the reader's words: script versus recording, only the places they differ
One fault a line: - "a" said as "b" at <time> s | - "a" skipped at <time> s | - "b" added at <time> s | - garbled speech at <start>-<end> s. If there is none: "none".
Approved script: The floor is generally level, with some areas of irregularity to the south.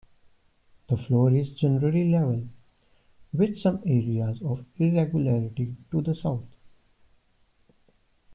none